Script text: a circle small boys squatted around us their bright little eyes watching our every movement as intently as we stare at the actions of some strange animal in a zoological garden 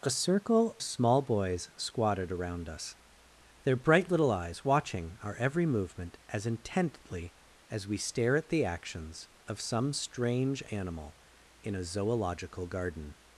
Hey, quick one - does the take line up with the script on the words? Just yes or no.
yes